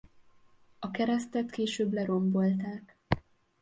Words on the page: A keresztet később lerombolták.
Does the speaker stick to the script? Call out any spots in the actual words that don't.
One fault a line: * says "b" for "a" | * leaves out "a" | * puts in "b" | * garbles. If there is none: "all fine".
all fine